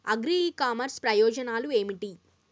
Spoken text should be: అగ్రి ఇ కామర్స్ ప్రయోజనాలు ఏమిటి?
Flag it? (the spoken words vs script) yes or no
no